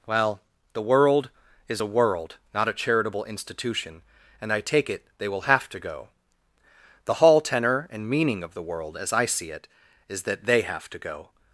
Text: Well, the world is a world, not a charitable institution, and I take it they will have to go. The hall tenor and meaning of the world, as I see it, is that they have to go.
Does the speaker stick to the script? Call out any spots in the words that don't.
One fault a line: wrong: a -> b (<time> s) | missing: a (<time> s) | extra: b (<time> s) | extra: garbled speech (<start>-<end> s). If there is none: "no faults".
no faults